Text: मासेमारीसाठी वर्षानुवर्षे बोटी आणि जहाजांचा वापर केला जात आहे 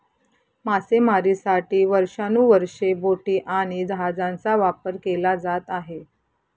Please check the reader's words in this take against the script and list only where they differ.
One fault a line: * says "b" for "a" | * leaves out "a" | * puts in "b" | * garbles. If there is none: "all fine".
all fine